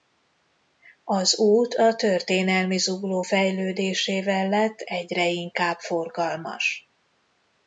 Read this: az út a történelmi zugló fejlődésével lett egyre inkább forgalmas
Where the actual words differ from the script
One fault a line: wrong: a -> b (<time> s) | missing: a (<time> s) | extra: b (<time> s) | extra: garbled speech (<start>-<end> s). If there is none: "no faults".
no faults